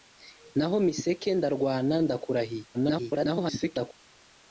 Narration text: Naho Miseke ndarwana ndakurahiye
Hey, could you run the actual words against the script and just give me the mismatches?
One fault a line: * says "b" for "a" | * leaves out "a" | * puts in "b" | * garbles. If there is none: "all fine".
* garbles